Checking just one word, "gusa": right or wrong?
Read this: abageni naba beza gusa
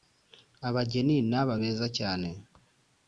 wrong